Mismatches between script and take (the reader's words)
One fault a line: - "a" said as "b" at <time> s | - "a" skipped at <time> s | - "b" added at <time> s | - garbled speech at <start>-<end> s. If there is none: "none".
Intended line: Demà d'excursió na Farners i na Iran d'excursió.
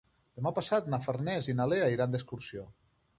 - "d'excursió" said as "passat" at 0.6 s
- "Lea" added at 1.7 s